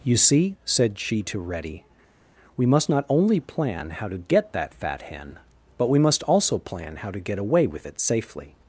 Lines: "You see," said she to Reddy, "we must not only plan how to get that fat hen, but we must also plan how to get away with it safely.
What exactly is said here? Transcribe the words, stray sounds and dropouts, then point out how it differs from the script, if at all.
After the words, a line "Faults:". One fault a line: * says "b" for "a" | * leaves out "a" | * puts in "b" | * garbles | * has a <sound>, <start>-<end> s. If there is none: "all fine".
"You see," said she to Reddy, "we must not only plan how to get that fat hen, but we must also plan how to get away with it safely.
Faults:
all fine